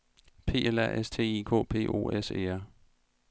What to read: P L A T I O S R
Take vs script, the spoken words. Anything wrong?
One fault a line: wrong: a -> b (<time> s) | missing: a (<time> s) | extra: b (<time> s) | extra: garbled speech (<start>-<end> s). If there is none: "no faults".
extra: S (1.0 s)
extra: K P (1.5 s)
extra: E (2.3 s)